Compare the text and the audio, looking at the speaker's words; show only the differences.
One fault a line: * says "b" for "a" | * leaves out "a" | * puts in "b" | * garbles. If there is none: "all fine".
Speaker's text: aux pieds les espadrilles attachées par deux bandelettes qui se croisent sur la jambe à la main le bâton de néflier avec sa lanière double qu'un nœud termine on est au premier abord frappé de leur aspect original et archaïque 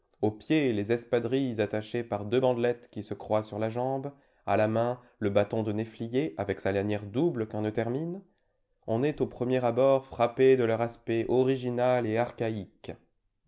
all fine